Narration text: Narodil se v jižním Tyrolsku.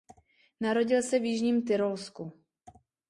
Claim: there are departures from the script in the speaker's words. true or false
false